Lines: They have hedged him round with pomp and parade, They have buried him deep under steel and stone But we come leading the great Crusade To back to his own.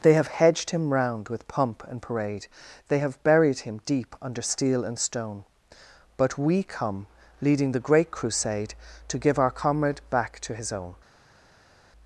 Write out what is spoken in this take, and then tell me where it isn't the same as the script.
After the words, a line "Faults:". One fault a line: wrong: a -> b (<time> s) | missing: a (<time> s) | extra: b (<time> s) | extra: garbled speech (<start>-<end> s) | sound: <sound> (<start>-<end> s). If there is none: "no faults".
They have hedged him round with pomp and parade, They have buried him deep under steel and stone But we come leading the great Crusade To give our Comrade back to his own.
Faults:
extra: give our Comrade (9.2 s)